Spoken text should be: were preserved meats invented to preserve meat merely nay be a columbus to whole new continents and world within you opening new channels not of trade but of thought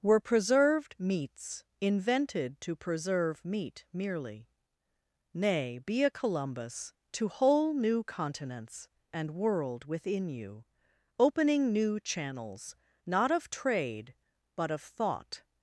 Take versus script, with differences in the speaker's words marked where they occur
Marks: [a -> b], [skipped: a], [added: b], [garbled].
were preserved meats invented to preserve meat merely nay be a columbus to whole new continents and world within you opening new channels not of trade but of thought